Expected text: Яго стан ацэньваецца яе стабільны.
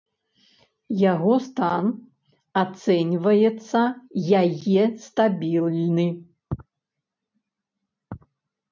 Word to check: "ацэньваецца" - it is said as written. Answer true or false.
true